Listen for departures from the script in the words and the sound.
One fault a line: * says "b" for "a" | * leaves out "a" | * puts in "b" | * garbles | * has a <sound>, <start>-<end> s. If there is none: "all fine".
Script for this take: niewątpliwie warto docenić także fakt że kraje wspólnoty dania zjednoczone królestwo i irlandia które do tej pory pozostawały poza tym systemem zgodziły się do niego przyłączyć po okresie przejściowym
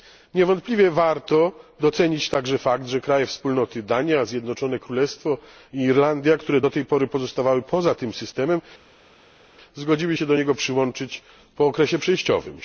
all fine